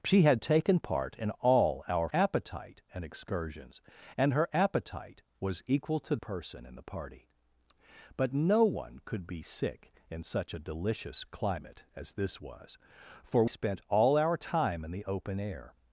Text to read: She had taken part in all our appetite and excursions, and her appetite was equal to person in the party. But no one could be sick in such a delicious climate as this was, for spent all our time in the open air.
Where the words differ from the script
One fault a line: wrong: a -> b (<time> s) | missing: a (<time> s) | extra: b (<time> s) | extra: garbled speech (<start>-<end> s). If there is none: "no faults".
no faults